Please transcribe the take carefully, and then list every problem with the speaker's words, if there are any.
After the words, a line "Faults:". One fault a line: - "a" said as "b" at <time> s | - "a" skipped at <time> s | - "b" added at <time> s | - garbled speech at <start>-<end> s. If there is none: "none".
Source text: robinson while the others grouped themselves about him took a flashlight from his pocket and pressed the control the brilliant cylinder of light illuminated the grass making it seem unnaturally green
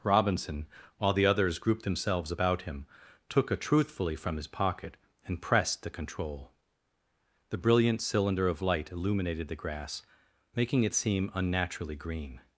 robinson while the others grouped themselves about him took a truthfully from his pocket and pressed the control the brilliant cylinder of light illuminated the grass making it seem unnaturally green
Faults:
- "flashlight" said as "truthfully" at 3.6 s